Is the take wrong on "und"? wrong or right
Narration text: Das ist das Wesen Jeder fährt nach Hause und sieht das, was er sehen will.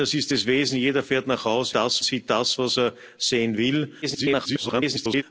wrong